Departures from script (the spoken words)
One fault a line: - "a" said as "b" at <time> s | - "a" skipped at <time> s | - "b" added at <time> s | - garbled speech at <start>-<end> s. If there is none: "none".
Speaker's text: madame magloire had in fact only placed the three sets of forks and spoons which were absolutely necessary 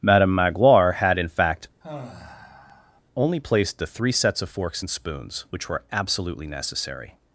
none